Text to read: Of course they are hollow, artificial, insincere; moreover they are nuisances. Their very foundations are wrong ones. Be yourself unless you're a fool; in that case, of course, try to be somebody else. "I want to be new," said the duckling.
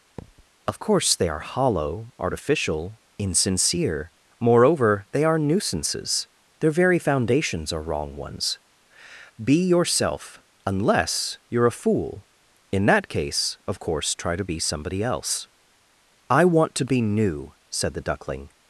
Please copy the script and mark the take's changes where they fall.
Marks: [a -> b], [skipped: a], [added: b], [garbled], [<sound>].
[thud] Of course they are hollow, artificial, insincere; moreover they are nuisances. Their very foundations are wrong ones. Be yourself unless you're a fool; in that case, of course, try to be somebody else. "I want to be new," said the duckling.